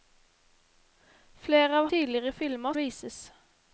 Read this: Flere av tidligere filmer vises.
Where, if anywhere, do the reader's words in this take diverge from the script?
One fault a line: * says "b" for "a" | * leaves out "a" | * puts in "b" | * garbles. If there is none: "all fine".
all fine